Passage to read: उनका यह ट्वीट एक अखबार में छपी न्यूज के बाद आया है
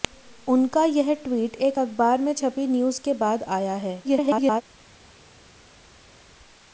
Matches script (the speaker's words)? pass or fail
fail